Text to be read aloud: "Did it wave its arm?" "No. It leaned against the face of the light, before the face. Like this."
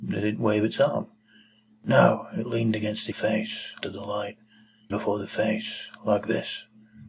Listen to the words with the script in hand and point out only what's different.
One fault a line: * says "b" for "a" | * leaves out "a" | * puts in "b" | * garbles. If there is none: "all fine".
all fine